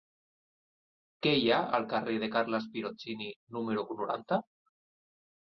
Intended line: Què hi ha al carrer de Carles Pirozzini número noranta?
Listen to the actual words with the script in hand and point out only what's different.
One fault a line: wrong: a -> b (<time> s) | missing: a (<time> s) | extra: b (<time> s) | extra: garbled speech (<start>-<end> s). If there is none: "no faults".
no faults